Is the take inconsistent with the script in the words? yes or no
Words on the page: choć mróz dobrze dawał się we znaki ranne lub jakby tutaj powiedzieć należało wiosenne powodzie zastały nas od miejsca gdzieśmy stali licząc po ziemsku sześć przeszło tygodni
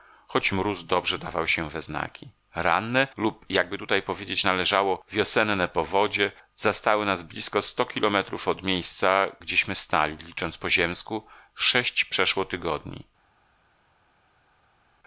yes